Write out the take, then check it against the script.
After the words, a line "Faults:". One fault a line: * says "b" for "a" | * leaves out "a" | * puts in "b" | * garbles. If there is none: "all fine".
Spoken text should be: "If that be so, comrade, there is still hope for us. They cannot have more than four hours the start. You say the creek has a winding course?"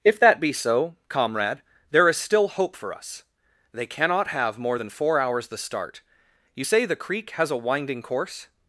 "If that be so, comrade, there is still hope for us. They cannot have more than four hours the start. You say the creek has a winding course?"
Faults:
all fine